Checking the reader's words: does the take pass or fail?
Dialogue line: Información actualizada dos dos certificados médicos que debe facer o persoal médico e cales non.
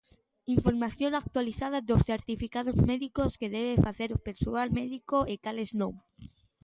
fail